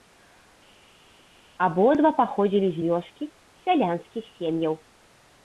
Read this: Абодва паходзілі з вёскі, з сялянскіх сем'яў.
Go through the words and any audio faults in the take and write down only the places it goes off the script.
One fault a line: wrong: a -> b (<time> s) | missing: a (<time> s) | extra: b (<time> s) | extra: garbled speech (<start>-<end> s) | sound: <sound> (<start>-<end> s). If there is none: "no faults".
no faults